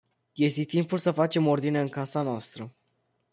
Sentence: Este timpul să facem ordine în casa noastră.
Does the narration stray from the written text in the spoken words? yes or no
no